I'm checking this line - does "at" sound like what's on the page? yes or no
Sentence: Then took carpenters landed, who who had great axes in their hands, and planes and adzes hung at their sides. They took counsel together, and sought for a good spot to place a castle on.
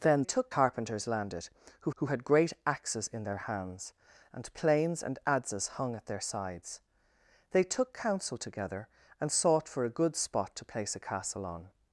yes